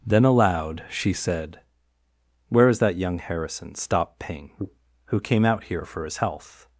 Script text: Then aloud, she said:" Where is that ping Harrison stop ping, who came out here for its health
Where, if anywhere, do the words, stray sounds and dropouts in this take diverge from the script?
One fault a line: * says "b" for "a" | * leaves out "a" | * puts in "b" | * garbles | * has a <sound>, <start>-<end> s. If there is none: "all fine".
* says "young" for "ping"
* says "his" for "its"